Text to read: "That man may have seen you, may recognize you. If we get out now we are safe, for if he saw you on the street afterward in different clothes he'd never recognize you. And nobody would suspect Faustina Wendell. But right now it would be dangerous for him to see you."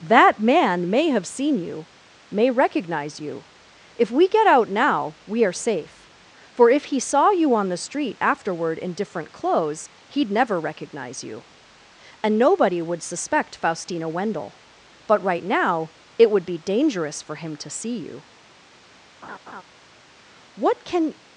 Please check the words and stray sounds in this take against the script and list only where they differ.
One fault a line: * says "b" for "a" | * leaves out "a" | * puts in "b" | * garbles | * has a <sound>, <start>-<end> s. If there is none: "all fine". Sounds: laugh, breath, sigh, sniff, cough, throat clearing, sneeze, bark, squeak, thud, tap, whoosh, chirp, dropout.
* has a laugh, 19.2-19.6 s
* puts in "What can"